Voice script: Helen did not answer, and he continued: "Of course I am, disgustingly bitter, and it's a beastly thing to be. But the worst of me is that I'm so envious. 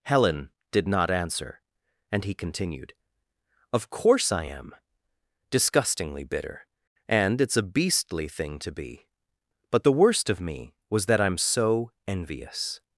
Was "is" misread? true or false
true